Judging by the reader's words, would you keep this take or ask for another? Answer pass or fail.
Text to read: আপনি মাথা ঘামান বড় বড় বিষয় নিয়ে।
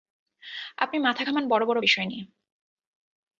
pass